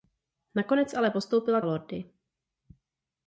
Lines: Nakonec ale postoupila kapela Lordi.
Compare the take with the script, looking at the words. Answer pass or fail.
fail